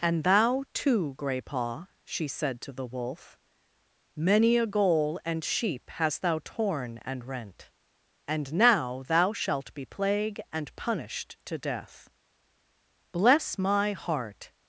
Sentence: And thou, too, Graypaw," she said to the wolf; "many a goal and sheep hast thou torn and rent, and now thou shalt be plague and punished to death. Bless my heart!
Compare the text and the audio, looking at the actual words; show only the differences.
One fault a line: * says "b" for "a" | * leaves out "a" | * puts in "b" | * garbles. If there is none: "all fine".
all fine